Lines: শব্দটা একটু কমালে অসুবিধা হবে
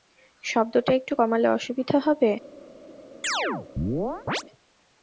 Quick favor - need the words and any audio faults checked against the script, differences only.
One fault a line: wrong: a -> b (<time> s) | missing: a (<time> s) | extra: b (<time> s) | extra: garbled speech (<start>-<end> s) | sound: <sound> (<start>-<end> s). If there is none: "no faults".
sound: chirp (3.2-4.4 s)